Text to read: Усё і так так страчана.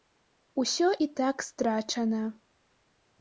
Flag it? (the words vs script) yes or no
yes